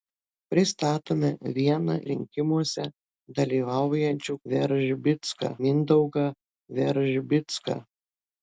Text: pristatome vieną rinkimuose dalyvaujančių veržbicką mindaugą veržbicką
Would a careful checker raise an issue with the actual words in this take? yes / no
no